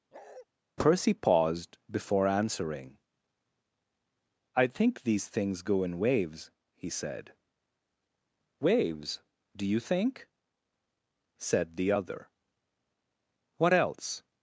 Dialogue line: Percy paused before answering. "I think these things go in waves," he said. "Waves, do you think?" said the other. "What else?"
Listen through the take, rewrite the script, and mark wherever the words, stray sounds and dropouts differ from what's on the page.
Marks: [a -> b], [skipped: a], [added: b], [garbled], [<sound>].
[bark] Percy paused before answering. "I think these things go in waves," he said. "Waves, do you think?" said the other. "What else?"